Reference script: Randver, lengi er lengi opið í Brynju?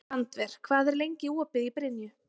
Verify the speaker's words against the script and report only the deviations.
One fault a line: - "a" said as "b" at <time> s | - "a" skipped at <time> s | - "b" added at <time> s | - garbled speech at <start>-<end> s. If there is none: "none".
- "lengi" said as "hvað" at 0.7 s